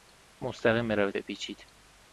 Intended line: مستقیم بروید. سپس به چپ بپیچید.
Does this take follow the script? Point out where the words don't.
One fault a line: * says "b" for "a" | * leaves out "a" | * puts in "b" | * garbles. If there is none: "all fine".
* leaves out "سپس به چپ"